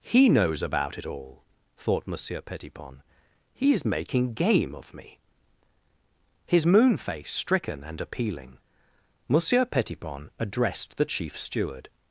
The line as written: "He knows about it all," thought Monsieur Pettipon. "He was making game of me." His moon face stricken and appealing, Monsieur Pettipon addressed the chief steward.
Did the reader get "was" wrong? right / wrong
wrong